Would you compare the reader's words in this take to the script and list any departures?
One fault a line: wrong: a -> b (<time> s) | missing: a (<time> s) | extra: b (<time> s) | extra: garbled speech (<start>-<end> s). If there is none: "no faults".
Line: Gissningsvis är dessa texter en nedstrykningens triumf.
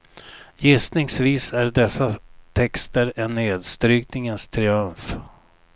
no faults